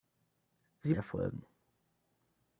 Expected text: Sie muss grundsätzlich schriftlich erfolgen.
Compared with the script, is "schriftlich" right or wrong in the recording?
wrong